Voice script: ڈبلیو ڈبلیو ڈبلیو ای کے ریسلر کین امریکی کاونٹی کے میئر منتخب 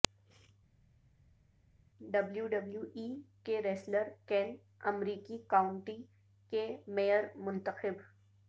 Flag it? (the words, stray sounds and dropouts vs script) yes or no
yes